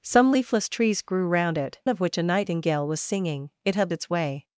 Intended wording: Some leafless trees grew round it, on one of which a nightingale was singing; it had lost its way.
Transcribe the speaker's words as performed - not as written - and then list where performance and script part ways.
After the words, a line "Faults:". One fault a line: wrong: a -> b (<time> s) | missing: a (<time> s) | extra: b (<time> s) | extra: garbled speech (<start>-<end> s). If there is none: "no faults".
Some leafless trees grew round it, of which a nightingale was singing; it had its way.
Faults:
missing: on one (1.8 s)
missing: lost (3.9 s)